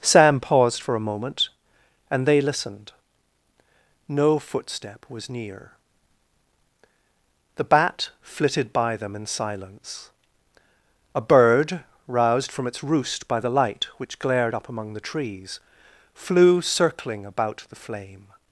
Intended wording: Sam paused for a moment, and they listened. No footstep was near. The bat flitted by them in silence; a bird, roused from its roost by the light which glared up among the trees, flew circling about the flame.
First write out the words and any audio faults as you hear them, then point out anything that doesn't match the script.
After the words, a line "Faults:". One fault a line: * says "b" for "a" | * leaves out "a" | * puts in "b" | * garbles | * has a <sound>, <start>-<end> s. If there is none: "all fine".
Sam paused for a moment, and they listened. No footstep was near. The bat flitted by them in silence; a bird, roused from its roost by the light which glared up among the trees, flew circling about the flame.
Faults:
all fine